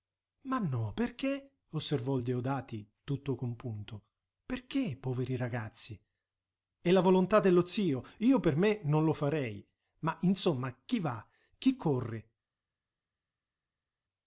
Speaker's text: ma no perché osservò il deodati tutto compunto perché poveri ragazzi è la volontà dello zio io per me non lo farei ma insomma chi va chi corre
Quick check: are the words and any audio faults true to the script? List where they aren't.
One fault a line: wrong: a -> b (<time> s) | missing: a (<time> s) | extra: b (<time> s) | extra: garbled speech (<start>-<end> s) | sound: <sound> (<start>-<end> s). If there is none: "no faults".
no faults